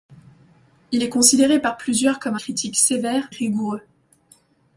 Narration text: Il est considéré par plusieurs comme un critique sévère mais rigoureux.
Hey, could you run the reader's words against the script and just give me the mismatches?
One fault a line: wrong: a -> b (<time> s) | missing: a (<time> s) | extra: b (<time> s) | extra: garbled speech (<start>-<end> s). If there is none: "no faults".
missing: un (2.4 s)
missing: mais (3.3 s)